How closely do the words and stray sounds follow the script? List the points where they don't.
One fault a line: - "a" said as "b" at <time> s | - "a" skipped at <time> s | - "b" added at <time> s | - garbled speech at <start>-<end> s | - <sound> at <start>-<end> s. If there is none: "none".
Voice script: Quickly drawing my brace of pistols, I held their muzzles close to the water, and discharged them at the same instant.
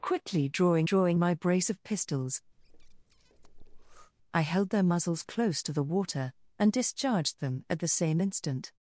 - "drawing" added at 0.8 s
- breath at 2.6-4.1 s